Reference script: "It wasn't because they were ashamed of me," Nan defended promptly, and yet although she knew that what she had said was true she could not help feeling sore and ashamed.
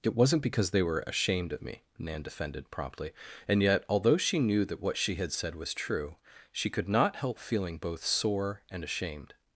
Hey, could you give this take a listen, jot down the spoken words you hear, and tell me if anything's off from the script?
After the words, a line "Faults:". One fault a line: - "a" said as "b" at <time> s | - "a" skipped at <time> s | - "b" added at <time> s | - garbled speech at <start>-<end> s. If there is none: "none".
"It wasn't because they were ashamed of me," Nan defended promptly, and yet although she knew that what she had said was true she could not help feeling both sore and ashamed.
Faults:
- "both" added at 7.8 s